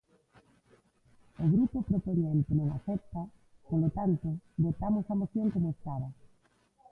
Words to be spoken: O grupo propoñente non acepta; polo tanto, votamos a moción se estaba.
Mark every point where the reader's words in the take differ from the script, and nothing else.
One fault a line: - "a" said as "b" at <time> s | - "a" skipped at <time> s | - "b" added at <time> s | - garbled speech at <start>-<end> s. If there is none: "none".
- "se" said as "como" at 5.5 s